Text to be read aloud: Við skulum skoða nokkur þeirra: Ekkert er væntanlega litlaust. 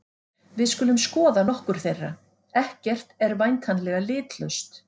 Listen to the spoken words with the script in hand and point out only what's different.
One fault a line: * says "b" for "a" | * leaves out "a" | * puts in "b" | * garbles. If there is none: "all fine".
all fine